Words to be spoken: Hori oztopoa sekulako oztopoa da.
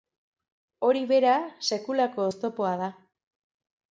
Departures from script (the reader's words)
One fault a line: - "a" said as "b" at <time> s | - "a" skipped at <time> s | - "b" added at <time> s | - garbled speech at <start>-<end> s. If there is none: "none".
- "oztopoa" said as "bera" at 1.1 s